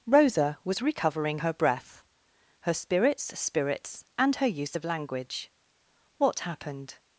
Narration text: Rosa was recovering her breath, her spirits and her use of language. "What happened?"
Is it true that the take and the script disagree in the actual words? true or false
true